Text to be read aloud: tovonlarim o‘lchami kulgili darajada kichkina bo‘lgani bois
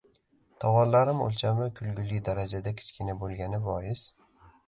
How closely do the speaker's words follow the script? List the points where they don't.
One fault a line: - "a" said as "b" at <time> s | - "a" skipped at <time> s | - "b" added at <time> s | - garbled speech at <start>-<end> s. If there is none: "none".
none